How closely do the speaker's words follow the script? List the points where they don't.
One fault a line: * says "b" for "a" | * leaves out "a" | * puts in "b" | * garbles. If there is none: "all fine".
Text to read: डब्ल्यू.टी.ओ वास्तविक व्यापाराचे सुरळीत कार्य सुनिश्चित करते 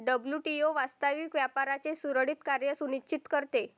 all fine